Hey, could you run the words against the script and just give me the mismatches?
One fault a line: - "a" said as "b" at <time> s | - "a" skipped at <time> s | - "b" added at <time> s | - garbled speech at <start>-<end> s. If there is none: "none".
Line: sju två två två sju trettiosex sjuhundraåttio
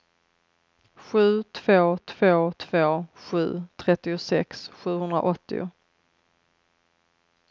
none